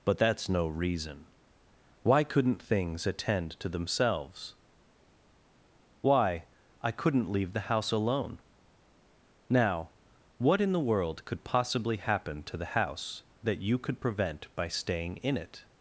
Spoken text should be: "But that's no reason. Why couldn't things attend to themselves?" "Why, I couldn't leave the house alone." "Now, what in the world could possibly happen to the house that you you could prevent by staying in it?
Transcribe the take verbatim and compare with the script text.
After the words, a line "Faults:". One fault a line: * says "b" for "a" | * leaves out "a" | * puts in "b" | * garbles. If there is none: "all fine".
"But that's no reason. Why couldn't things attend to themselves?" "Why, I couldn't leave the house alone." "Now, what in the world could possibly happen to the house that you could prevent by staying in it?
Faults:
* leaves out "you"